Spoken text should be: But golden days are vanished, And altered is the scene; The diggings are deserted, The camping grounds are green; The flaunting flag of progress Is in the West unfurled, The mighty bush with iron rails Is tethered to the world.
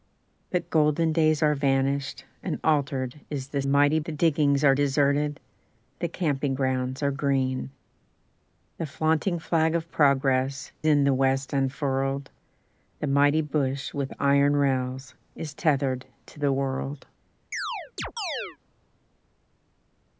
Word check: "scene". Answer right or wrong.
wrong